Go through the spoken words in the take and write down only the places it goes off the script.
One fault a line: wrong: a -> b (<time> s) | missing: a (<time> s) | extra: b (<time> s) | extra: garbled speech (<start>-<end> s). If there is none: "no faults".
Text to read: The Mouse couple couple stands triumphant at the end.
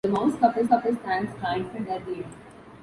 no faults